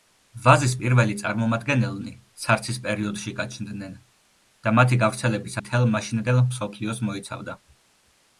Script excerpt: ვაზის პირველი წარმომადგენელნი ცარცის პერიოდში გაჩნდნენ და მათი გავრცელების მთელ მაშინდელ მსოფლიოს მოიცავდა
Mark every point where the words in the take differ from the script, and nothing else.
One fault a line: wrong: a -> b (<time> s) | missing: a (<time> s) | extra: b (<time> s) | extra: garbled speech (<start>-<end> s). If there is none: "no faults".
no faults